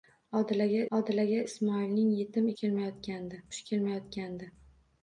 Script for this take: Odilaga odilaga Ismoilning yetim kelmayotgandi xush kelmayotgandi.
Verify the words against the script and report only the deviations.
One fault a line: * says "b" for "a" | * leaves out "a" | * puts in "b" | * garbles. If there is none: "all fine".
all fine